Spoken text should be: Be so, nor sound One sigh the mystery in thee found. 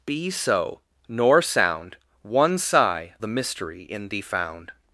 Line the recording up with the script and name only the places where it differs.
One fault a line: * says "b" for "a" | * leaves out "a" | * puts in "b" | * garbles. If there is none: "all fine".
all fine